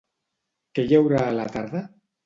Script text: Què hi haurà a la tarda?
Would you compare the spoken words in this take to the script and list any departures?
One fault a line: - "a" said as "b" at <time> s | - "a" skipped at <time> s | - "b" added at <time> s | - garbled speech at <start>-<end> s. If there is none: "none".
none